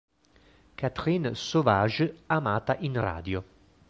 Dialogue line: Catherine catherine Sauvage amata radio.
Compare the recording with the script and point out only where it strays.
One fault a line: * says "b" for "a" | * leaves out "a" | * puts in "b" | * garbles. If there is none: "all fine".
* leaves out "catherine"
* puts in "in"